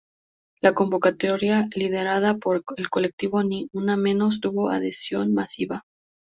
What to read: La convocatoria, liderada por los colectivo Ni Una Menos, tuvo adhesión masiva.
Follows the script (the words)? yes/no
no